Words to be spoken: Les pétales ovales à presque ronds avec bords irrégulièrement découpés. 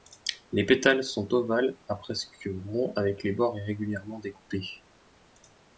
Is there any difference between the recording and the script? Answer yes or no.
yes